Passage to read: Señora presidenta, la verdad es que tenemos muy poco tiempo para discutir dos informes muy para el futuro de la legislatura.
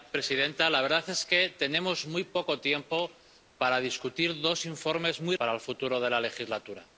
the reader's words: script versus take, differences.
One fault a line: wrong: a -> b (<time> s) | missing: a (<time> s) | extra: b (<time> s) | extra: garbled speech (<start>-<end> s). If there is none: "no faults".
no faults